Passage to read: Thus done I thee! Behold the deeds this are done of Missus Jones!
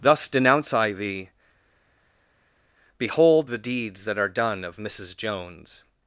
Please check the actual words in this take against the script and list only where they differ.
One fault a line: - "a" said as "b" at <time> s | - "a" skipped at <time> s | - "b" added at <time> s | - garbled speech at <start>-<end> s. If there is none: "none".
- "done" said as "denounce" at 0.3 s
- "this" said as "that" at 4.0 s